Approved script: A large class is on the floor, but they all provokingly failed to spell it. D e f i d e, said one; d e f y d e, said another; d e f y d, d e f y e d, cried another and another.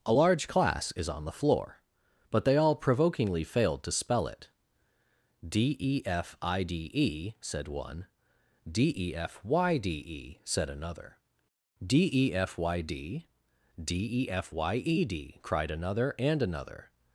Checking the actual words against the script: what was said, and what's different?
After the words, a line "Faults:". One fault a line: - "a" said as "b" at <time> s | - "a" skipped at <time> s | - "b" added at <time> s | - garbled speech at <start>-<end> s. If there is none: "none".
A large class is on the floor, but they all provokingly failed to spell it. D e f i d e, said one; d e f y d e, said another; d e f y d, d e f y e d, cried another and another.
Faults:
none